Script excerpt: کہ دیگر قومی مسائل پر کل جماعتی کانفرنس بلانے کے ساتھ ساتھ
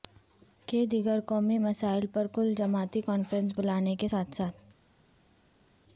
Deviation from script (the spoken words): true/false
false